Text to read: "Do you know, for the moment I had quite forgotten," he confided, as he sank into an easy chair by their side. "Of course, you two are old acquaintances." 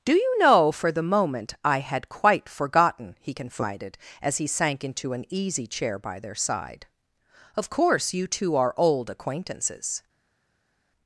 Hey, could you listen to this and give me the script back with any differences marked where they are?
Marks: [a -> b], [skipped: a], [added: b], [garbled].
"Do you know, for the moment I had quite forgotten," he confided, as he sank into an easy chair by their side. "Of course, you two are old acquaintances."